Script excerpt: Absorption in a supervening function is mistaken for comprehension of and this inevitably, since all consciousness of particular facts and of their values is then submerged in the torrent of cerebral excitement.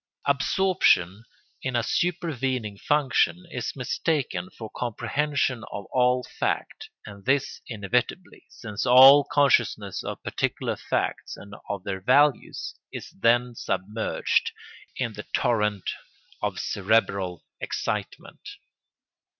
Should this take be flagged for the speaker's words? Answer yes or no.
yes